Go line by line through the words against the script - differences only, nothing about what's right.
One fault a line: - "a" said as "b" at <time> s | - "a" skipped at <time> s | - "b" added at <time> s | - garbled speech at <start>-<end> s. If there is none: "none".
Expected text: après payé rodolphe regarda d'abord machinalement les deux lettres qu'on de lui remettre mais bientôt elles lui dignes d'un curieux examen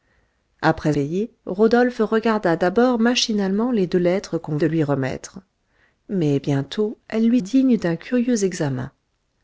none